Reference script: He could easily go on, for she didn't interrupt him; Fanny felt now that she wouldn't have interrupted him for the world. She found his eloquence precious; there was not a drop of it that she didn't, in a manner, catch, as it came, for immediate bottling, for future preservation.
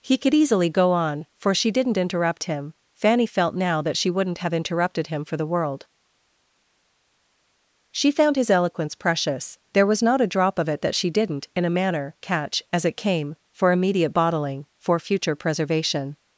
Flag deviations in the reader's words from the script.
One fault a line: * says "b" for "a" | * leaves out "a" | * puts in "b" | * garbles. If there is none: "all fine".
all fine